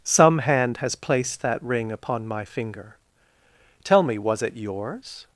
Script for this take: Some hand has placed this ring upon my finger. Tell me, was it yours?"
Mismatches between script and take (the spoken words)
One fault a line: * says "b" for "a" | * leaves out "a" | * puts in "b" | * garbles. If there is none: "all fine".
* says "that" for "this"